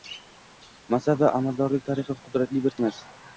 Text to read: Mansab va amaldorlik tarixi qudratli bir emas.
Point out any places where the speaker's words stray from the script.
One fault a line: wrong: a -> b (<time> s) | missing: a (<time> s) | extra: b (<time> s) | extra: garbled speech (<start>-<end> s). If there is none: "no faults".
no faults